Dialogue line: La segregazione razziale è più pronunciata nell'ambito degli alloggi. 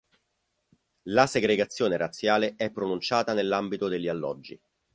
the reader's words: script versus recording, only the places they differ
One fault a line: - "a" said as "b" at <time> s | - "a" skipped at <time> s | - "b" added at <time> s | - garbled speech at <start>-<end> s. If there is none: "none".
- "più" skipped at 2.7 s